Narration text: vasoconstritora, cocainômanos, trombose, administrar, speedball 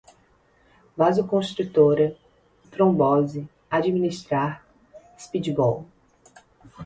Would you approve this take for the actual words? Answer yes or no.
no